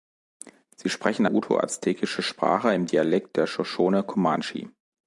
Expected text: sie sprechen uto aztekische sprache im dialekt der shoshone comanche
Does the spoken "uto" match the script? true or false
true